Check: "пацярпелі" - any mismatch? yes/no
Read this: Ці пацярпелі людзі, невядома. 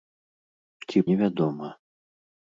yes